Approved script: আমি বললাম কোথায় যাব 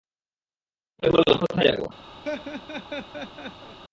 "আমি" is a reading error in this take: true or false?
false